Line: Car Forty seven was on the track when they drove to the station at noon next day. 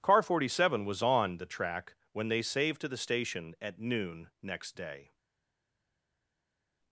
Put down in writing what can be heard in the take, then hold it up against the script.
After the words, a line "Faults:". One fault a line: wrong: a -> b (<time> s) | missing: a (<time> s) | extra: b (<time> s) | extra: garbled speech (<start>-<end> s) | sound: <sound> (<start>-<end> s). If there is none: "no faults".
Car Forty seven was on the track when they saved to the station at noon next day.
Faults:
wrong: drove -> saved (2.4 s)